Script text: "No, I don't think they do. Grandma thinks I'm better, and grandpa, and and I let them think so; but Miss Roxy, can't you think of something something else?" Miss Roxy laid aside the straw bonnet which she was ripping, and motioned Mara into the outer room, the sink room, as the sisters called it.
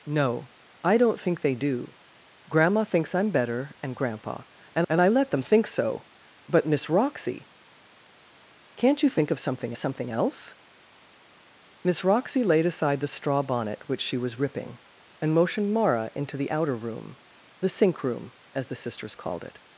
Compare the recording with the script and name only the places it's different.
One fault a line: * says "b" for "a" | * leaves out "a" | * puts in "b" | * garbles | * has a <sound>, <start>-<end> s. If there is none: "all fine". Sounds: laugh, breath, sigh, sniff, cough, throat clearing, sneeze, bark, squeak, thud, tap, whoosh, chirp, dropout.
all fine